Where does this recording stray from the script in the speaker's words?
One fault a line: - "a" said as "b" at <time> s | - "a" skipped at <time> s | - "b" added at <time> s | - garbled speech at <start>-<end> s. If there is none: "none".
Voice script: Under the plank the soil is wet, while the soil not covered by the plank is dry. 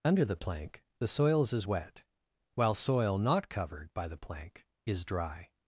- "soil" said as "soils" at 1.1 s
- "the" skipped at 2.7 s